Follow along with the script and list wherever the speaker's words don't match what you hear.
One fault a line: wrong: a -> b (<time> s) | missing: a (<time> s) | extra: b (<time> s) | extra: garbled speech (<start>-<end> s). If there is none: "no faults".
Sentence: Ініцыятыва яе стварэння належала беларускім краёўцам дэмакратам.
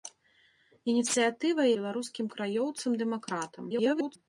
missing: яе стварэння належала (1.7 s)
extra: garbled speech (3.7-4.2 s)